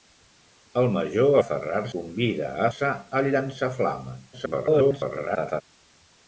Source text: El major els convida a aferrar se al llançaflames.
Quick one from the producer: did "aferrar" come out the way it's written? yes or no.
no